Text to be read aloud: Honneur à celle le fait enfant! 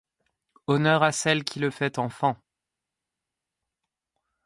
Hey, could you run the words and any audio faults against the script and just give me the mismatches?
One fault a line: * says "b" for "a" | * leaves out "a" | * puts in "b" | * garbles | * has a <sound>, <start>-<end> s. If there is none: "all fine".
* puts in "qui"